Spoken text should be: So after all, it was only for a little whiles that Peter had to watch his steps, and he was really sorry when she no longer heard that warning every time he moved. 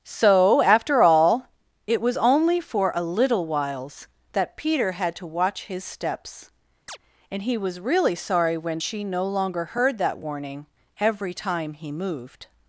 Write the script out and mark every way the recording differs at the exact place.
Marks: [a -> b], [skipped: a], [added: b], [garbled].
So after all, it was only for a little whiles that Peter had to watch his steps, and he was really sorry when she no longer heard that warning every time he moved.